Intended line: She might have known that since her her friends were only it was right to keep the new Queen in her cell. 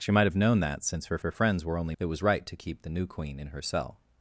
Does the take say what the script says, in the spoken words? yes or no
yes